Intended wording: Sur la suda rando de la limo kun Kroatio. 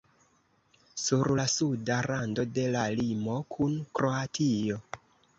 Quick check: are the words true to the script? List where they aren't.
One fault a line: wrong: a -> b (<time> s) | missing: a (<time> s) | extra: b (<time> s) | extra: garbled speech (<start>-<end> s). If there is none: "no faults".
no faults